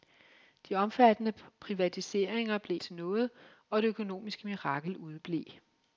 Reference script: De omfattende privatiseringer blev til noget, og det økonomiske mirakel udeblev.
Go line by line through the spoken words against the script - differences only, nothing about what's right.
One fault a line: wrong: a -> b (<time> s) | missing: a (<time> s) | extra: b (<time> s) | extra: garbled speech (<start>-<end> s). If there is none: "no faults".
no faults